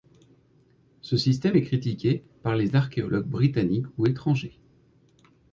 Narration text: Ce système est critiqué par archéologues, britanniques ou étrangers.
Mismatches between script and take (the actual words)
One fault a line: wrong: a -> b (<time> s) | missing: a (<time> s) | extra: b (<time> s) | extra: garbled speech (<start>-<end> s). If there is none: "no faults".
extra: les (2.6 s)